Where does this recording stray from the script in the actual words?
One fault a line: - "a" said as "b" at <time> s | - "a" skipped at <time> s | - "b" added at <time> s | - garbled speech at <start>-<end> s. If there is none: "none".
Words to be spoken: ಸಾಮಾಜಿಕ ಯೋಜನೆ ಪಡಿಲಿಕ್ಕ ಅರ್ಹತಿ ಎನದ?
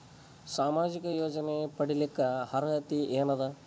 none